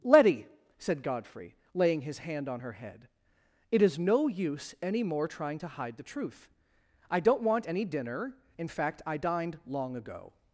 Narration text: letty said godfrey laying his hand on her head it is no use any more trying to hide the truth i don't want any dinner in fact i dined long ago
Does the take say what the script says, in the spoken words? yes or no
yes